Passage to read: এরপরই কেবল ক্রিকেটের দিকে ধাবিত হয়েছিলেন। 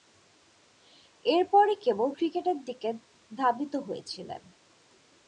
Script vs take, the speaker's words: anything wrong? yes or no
no